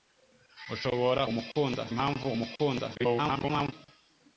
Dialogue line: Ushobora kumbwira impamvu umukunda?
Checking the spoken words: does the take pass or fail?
fail